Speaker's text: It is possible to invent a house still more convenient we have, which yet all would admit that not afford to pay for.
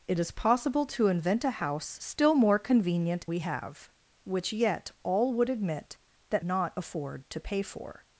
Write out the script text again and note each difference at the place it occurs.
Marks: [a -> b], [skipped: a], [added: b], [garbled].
It is possible to invent a house still more convenient we have, which yet all would admit that not afford to pay for.